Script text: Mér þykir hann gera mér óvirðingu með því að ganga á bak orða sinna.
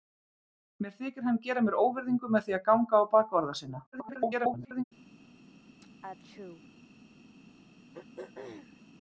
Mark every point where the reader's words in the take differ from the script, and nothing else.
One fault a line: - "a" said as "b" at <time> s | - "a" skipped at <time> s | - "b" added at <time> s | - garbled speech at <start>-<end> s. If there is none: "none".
- garbled speech at 3.9-4.8 s